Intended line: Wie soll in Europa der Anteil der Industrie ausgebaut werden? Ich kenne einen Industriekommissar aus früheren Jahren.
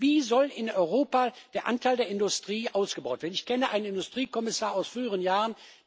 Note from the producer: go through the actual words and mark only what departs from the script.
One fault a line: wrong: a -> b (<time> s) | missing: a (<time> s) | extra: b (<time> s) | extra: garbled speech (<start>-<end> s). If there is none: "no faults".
no faults